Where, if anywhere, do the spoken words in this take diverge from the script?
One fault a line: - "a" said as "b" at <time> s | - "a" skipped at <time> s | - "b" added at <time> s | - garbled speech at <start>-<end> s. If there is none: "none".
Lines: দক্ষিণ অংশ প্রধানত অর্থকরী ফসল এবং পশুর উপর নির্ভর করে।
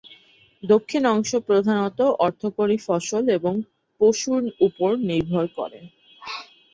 none